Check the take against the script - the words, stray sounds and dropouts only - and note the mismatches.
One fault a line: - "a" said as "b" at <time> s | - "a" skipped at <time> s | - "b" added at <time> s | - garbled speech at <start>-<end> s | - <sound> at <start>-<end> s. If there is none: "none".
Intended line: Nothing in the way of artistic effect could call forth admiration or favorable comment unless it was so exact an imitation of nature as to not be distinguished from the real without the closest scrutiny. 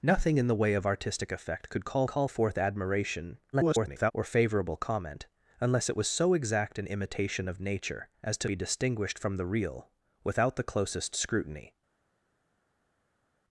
- "call" added at 2.1 s
- garbled speech at 3.5-4.1 s
- "not" skipped at 8.5 s